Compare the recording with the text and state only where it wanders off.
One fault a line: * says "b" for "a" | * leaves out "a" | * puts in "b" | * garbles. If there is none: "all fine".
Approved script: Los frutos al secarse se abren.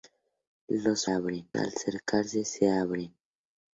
* says "abren" for "frutos"